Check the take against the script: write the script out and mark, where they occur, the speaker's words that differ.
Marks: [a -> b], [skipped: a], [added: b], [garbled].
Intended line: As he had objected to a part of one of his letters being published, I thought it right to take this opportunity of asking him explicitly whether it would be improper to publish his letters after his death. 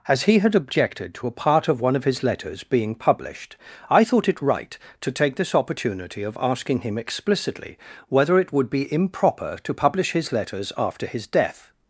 As he had objected to a part of one of his letters being published, I thought it right to take this opportunity of asking him explicitly whether it would be improper to publish his letters after his death.